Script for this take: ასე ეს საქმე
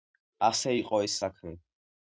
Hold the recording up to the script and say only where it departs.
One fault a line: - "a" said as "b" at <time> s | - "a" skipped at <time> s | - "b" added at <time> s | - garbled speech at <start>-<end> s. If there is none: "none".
- "იყო" added at 0.8 s